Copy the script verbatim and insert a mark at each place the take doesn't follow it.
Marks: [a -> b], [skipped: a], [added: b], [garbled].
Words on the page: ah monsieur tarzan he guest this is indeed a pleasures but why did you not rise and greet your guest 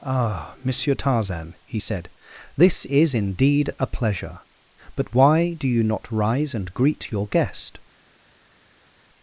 ah monsieur tarzan he [guest -> said] this is indeed a [pleasures -> pleasure] but why [did -> do] you not rise and greet your guest